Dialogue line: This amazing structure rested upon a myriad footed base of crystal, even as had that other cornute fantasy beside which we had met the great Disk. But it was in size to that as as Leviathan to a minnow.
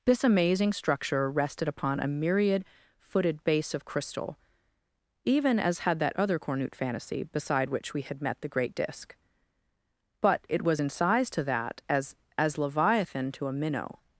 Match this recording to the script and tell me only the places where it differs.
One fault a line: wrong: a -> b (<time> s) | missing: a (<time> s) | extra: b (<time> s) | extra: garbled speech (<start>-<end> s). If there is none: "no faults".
no faults